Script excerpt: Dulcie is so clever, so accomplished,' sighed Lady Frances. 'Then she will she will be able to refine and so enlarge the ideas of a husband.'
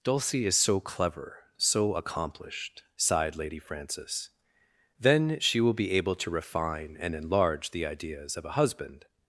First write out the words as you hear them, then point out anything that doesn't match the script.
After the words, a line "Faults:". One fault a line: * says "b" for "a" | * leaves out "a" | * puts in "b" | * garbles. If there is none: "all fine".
Dulcie is so clever, so accomplished,' sighed Lady Frances. 'Then she will be able to refine and enlarge the ideas of a husband.'
Faults:
* leaves out "she will"
* leaves out "so"